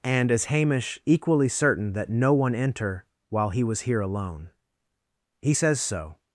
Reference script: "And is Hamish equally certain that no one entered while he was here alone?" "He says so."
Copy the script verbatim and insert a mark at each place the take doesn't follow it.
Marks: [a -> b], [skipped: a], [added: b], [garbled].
"And is Hamish equally certain that no one [entered -> enter] while he was here alone?" "He says so."